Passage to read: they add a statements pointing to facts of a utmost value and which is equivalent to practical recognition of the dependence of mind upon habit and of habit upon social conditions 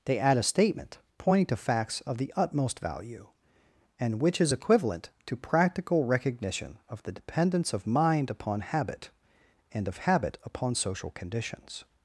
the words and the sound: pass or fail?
fail